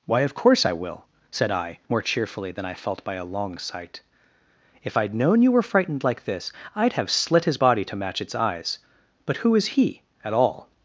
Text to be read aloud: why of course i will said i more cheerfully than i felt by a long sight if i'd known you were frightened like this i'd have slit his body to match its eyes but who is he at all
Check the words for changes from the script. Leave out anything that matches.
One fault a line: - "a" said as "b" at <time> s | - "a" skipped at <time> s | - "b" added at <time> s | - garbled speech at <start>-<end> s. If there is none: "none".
none